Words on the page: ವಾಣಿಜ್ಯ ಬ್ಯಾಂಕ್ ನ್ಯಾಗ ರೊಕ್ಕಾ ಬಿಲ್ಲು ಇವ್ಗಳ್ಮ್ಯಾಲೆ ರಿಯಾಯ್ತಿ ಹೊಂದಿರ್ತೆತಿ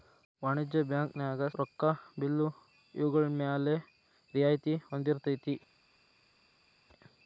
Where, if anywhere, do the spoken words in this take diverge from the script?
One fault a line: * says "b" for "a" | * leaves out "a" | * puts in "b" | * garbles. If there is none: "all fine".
all fine